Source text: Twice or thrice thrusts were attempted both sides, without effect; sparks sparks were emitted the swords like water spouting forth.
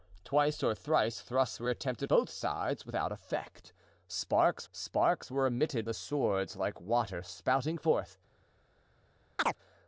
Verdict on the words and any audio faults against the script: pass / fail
fail